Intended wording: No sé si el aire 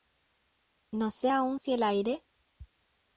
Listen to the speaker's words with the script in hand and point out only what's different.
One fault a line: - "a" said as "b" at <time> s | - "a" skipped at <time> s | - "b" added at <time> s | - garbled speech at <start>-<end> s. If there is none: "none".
- "aún" added at 1.3 s